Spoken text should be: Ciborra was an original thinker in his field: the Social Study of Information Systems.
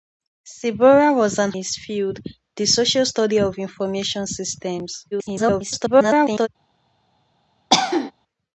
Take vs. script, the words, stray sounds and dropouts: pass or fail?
fail